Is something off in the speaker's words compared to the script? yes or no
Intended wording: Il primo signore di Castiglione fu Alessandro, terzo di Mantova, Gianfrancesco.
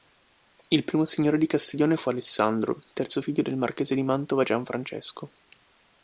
yes